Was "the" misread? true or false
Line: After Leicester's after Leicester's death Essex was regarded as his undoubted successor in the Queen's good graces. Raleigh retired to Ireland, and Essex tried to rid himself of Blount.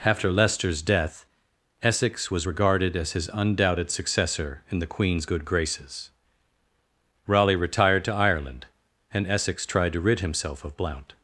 false